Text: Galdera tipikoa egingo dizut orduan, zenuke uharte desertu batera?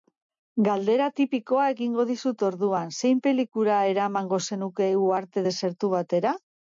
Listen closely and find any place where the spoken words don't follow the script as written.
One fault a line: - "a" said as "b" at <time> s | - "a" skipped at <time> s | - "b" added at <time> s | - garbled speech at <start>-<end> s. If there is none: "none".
- "zein pelikula eramango" added at 3.0 s